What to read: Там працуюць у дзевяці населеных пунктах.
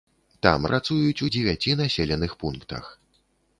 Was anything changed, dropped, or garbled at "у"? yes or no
no